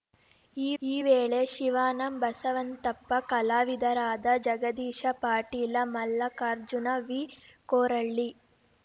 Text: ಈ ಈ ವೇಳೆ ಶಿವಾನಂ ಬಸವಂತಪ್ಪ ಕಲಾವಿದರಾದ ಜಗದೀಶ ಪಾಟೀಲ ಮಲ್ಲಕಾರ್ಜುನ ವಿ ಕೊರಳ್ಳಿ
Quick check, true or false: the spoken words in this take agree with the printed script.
true